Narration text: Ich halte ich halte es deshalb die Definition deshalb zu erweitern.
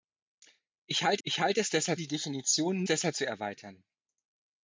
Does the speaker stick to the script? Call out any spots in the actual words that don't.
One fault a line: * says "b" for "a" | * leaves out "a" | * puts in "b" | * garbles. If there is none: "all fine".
all fine